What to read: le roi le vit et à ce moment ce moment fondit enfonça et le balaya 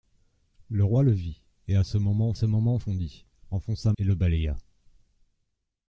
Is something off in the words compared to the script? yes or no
no